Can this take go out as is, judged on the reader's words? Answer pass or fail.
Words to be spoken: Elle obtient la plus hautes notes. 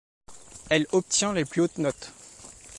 fail